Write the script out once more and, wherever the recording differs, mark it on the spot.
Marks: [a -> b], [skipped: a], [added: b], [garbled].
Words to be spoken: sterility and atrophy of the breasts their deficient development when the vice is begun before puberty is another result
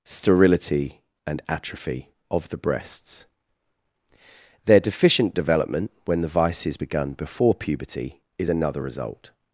sterility and atrophy of the breasts their deficient development when the vice is begun before puberty is another result